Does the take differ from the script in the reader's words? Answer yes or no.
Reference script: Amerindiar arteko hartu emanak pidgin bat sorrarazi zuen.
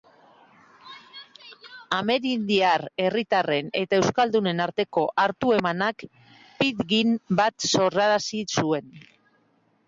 yes